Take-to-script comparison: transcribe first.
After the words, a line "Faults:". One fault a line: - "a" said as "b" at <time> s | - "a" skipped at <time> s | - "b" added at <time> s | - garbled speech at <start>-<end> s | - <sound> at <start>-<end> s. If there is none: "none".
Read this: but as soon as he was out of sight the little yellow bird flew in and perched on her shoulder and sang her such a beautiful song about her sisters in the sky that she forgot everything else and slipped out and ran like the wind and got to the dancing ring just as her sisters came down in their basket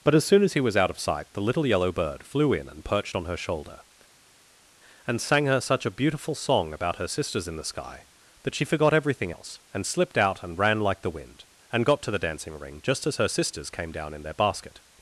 but as soon as he was out of sight the little yellow bird flew in and perched on her shoulder and sang her such a beautiful song about her sisters in the sky that she forgot everything else and slipped out and ran like the wind and got to the dancing ring just as her sisters came down in their basket
Faults:
none